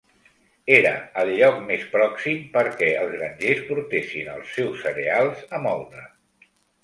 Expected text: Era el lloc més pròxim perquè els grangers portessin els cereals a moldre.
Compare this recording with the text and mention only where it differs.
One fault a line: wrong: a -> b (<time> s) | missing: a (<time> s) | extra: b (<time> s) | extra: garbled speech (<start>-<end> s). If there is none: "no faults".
extra: seus (4.6 s)